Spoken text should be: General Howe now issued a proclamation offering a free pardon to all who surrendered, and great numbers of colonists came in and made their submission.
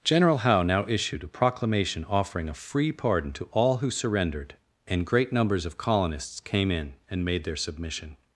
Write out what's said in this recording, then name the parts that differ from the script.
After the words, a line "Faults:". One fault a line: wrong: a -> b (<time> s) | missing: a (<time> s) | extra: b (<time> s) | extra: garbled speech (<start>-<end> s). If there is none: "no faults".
General Howe now issued a proclamation offering a free pardon to all who surrendered, and great numbers of colonists came in and made their submission.
Faults:
no faults